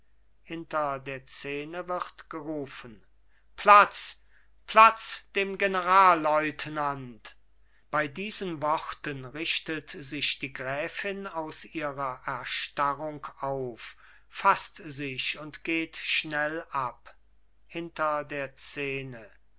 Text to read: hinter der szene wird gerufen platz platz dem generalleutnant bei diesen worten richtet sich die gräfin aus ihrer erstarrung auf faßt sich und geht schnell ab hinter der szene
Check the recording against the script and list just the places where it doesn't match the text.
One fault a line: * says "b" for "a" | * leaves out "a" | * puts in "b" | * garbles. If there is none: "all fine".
all fine